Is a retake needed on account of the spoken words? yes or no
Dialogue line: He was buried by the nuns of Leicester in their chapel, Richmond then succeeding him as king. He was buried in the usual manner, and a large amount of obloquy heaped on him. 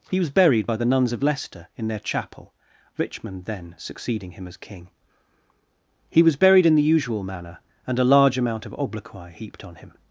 no